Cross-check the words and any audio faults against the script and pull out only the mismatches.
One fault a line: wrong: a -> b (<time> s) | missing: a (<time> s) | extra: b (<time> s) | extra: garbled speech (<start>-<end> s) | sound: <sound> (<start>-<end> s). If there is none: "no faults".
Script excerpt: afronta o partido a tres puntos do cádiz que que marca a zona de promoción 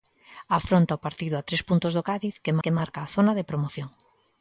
no faults